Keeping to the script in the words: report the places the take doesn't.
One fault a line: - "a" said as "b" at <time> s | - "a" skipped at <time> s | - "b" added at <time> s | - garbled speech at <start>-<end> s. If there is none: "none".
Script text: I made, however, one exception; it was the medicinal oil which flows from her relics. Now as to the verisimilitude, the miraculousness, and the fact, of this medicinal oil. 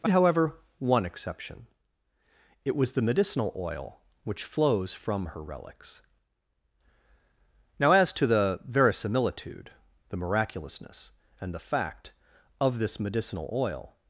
- "made" skipped at 0.1 s